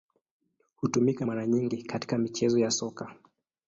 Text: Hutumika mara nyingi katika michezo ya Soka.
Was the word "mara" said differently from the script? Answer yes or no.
no